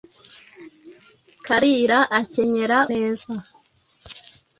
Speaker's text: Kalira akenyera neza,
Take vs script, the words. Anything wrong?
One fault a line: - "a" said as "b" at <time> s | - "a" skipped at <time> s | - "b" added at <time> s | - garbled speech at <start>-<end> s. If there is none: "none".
none